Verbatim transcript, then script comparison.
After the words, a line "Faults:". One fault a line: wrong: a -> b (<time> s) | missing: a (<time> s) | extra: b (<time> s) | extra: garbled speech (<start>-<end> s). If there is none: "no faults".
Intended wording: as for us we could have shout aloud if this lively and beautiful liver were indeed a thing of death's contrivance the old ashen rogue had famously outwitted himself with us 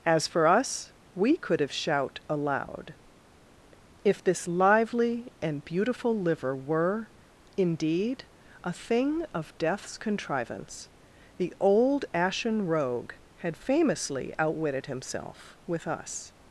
as for us we could have shout aloud if this lively and beautiful liver were indeed a thing of death's contrivance the old ashen rogue had famously outwitted himself with us
Faults:
no faults